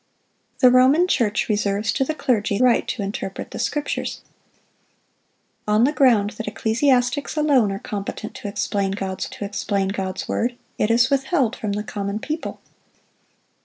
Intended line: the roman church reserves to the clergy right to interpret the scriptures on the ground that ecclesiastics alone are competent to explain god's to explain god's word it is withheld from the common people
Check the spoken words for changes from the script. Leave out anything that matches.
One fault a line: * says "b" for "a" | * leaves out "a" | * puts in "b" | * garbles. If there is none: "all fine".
all fine